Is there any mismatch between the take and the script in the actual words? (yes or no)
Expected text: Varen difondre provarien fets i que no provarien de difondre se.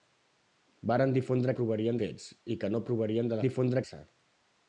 no